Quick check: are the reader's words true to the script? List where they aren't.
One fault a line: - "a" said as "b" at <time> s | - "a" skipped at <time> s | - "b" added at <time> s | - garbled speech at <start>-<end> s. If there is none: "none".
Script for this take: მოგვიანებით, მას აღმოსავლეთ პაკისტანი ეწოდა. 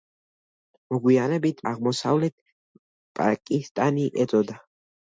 - "მას" skipped at 1.6 s